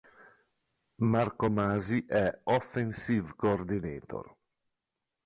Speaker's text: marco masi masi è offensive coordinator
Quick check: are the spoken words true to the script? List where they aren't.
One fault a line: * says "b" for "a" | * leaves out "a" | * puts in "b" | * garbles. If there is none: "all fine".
* leaves out "masi"